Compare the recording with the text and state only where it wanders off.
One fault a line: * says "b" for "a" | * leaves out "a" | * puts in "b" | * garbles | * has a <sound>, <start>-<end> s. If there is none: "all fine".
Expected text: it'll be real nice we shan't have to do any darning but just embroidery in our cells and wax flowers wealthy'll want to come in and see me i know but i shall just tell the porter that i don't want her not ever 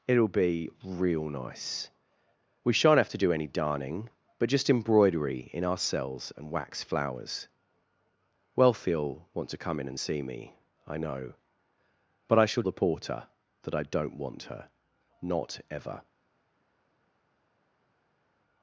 * leaves out "just tell"